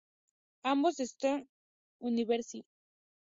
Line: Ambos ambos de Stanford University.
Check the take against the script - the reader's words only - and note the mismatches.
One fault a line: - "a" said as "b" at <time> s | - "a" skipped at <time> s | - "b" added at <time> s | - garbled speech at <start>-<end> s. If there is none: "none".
- "ambos" skipped at 0.9 s